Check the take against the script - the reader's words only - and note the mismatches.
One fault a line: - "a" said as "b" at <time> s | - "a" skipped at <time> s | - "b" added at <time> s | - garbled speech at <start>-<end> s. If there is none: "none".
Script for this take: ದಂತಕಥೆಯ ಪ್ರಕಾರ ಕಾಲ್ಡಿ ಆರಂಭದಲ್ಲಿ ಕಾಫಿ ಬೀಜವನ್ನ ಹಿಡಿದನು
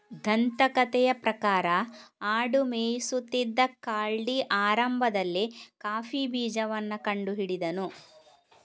- "ಆಡು ಮೇಯಿಸುತ್ತಿದ್ದ" added at 2.3 s
- "ಕಂಡು" added at 7.0 s